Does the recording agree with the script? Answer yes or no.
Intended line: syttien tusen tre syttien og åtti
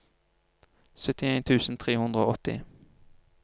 no